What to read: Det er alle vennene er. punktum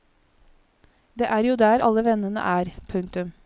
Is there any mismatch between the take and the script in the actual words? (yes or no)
yes